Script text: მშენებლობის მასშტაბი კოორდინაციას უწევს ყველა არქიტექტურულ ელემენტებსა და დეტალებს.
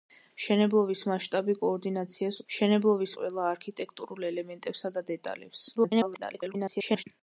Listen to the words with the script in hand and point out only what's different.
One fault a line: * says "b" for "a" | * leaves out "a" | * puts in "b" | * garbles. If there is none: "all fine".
* says "მშენებლობის" for "უწევს"
* garbles